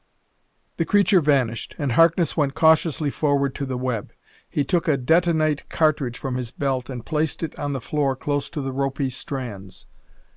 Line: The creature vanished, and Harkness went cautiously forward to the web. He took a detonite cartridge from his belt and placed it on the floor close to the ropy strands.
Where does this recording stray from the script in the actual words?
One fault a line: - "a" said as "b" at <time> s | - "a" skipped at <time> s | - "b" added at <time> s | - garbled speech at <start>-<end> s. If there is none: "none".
none